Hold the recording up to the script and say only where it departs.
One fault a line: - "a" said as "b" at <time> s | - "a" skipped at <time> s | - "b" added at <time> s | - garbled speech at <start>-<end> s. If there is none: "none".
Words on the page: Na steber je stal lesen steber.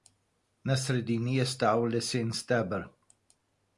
- "steber" said as "sredini" at 0.8 s